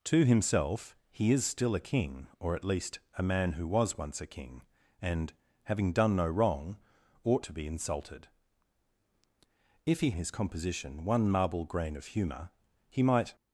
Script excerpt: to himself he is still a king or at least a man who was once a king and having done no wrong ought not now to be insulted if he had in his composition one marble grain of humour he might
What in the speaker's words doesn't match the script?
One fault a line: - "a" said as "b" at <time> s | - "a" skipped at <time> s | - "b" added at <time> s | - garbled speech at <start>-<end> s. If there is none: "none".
- "not now" skipped at 7.5 s
- "had in" skipped at 10.1 s